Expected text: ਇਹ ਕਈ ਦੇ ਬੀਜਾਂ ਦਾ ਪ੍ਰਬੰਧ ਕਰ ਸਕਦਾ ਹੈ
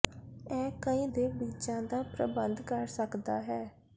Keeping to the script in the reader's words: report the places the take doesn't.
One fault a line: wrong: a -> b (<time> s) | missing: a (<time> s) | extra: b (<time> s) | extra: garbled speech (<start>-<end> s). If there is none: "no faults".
no faults